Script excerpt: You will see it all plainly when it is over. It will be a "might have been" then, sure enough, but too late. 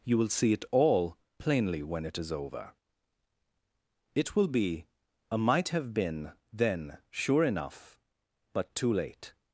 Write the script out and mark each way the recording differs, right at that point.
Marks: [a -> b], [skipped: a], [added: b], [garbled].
You will see it all plainly when it is over. It will be a "might have been" then, sure enough, but too late.